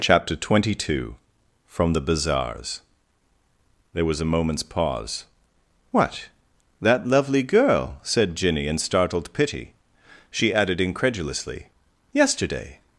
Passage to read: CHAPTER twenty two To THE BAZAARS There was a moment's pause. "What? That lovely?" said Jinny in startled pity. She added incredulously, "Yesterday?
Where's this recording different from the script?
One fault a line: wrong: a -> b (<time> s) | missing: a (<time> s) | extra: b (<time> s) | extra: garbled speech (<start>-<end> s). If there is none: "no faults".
wrong: To -> FROM (1.7 s)
extra: girl (7.4 s)